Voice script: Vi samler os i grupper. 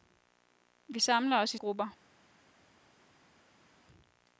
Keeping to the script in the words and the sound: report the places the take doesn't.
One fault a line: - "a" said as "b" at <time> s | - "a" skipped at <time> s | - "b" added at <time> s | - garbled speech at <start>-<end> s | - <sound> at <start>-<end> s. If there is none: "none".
none